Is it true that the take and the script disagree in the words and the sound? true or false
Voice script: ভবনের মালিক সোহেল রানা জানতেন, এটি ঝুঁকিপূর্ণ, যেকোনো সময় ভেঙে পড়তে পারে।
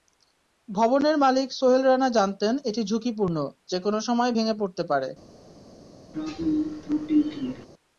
true